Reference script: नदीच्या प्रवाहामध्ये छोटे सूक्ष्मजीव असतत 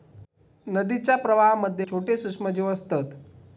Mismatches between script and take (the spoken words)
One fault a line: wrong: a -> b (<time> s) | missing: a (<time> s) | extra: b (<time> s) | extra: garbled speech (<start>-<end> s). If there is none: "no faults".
no faults